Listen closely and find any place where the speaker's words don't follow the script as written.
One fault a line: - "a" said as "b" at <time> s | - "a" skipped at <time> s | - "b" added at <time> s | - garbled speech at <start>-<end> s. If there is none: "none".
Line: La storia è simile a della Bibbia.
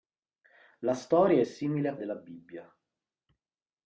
none